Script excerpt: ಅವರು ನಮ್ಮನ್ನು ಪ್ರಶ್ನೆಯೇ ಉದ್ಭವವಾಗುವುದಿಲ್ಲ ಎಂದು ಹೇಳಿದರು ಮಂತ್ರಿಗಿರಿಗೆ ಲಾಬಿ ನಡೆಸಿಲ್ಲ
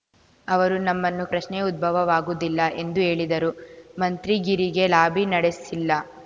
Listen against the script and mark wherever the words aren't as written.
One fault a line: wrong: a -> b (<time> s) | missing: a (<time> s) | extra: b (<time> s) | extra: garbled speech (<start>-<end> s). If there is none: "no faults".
no faults